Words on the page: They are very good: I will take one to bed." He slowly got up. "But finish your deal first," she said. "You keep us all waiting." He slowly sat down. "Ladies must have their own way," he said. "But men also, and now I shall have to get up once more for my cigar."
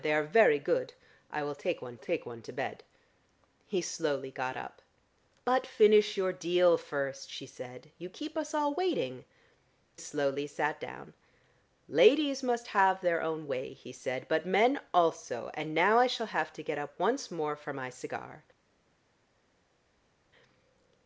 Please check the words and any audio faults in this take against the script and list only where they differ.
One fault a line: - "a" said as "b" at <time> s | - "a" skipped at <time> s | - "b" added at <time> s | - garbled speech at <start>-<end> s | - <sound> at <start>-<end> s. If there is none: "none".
- "take one" added at 2.0 s
- "He" skipped at 9.2 s